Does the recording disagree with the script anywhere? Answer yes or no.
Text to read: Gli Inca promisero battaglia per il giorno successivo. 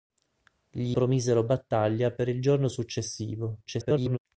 yes